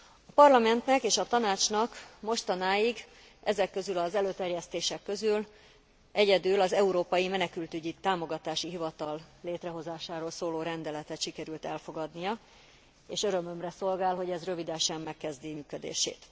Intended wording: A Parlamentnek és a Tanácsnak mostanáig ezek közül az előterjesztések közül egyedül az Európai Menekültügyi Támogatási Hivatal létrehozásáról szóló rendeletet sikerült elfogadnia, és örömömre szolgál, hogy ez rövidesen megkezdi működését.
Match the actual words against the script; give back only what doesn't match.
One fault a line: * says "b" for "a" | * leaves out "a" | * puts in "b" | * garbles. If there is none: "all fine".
all fine